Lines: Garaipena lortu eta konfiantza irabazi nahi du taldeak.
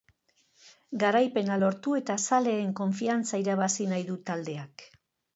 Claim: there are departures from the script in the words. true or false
true